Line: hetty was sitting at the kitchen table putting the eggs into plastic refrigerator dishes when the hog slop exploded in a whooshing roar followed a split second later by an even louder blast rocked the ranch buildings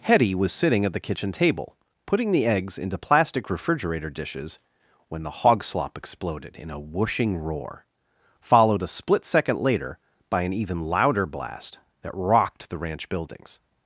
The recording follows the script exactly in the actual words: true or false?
false